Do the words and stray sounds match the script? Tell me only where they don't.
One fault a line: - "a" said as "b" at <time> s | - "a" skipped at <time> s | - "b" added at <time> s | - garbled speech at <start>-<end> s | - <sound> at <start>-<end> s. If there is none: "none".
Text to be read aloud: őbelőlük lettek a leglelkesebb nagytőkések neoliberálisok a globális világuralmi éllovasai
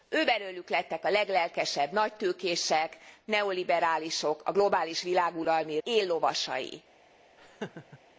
- laugh at 7.4-8.0 s